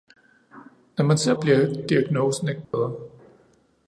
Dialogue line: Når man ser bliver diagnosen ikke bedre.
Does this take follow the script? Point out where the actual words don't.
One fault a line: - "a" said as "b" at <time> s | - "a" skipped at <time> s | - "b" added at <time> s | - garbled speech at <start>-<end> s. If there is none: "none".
none